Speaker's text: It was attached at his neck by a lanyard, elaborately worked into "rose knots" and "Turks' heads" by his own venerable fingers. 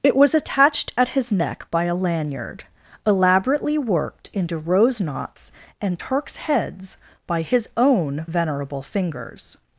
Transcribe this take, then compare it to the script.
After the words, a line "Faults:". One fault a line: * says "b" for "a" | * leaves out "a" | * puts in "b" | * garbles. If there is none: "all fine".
It was attached at his neck by a lanyard, elaborately worked into "rose knots" and "Turks' heads" by his own venerable fingers.
Faults:
all fine